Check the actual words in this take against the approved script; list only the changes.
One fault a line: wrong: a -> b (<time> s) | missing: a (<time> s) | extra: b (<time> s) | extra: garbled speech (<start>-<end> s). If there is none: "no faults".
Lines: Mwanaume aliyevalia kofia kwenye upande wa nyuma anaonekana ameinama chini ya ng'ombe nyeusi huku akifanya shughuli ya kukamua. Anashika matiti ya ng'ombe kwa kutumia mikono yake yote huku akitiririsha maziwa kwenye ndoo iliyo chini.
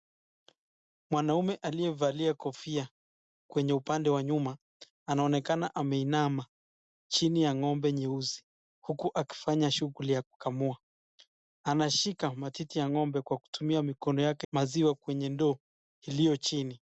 missing: yote huku akitiririsha (14.5 s)